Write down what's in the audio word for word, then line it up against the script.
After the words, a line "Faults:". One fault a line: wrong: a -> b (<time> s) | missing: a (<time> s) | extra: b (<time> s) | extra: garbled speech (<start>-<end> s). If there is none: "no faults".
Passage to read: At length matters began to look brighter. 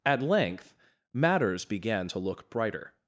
At length matters began to look brighter.
Faults:
no faults